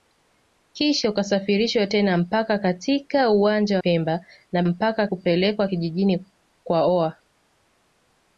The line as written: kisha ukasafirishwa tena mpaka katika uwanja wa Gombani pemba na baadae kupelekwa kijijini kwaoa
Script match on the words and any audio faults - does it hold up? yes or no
no